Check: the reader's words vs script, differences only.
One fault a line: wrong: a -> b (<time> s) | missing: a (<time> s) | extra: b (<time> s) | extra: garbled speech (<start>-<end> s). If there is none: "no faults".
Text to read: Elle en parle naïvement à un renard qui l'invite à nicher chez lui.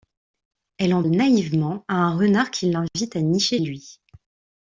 missing: parle (1.0 s)
missing: chez (3.6 s)